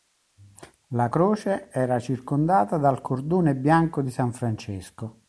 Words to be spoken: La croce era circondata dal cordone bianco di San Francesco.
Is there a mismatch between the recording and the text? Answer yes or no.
no